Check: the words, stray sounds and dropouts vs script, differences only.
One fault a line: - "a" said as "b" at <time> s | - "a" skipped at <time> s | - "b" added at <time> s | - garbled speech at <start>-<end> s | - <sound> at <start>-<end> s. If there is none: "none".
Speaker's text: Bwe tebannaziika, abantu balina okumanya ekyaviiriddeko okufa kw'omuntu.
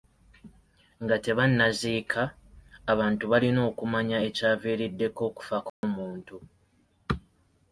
- "Bwe" said as "Nga" at 1.0 s
- dropout at 5.7-5.8 s